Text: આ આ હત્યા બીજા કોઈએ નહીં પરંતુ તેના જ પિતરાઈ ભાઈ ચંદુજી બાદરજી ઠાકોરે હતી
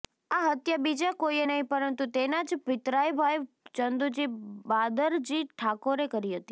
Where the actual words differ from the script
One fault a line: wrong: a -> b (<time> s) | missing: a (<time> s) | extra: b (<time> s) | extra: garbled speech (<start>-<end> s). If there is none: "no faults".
missing: આ (0.5 s)
extra: કરી (6.1 s)